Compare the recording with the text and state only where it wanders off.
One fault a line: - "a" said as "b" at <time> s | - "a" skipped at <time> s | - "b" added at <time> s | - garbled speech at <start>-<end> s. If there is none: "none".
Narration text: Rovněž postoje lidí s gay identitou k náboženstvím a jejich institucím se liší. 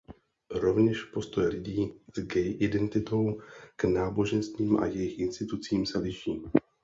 none